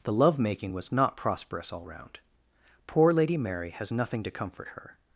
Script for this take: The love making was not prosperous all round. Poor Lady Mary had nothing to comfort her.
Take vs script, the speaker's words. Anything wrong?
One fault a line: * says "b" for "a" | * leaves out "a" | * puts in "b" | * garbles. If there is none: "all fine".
* says "has" for "had"